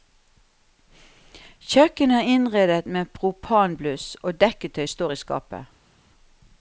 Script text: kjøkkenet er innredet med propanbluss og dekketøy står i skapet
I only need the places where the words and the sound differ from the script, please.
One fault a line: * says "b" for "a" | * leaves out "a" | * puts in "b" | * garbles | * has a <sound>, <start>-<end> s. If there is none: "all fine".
all fine